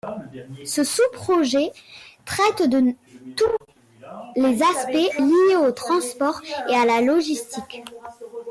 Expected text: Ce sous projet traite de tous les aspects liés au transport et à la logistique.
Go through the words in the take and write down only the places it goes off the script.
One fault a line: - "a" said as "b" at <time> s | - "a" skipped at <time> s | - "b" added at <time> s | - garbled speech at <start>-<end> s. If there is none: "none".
none